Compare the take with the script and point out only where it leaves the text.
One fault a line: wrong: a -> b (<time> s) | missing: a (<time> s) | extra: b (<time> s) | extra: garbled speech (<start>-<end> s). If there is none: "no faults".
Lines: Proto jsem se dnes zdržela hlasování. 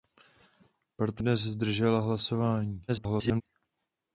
missing: jsem (1.2 s)
extra: garbled speech (2.9-3.4 s)